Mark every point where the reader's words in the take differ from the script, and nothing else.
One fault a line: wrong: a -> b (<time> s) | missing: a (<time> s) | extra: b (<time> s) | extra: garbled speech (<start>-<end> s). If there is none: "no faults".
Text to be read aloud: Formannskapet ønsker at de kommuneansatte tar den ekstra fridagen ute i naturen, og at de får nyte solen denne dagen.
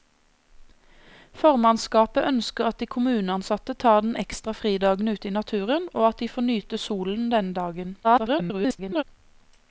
extra: garbled speech (8.0-9.0 s)